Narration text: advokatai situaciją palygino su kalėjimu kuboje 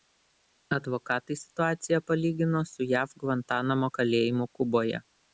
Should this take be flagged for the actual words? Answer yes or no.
yes